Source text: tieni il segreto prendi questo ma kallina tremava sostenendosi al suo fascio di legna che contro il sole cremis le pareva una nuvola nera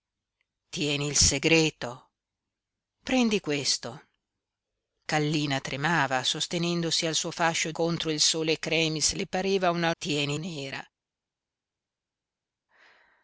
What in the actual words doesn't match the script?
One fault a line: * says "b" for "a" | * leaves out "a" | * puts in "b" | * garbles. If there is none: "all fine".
* leaves out "ma"
* leaves out "di legna che"
* says "tieni" for "nuvola"